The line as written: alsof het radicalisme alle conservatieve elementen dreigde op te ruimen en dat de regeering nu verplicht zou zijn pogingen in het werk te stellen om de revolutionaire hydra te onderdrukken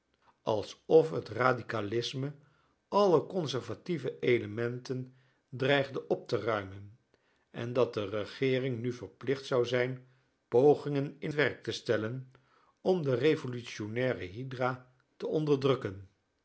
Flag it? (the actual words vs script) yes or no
yes